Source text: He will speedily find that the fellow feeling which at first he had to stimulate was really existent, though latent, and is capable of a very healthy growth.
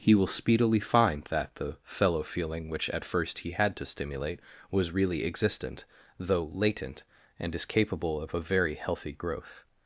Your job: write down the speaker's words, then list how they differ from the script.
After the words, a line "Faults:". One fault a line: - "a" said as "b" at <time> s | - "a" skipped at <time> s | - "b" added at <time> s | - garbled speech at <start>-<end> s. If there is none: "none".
He will speedily find that the fellow feeling which at first he had to stimulate was really existent, though latent, and is capable of a very healthy growth.
Faults:
none